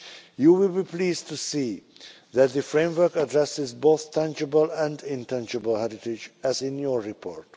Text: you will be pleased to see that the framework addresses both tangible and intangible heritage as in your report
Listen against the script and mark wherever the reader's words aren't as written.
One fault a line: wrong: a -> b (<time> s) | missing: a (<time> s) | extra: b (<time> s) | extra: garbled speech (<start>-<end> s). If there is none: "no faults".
no faults